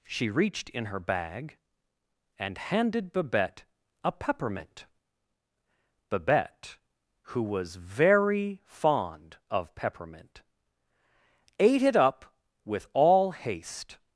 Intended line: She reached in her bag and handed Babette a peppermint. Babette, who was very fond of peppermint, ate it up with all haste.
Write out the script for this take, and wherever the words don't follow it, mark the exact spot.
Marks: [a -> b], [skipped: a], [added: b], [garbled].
She reached in her bag and handed Babette a peppermint. Babette, who was very fond of peppermint, ate it up with all haste.